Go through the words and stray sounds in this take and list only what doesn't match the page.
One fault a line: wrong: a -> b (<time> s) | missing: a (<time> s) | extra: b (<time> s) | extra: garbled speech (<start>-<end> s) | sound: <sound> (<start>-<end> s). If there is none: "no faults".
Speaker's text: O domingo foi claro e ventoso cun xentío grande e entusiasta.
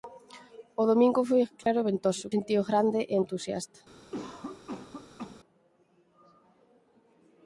sound: dropout (1.6-1.7 s)
missing: cun (2.2 s)
sound: cough (4.1-5.4 s)